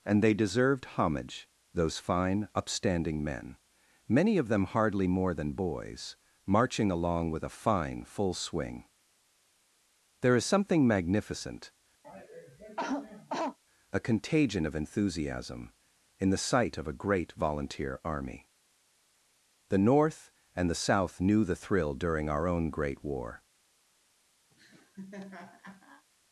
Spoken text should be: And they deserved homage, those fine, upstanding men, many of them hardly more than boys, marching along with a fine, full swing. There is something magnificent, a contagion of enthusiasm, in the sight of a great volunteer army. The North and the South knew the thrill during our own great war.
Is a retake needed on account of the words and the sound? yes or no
yes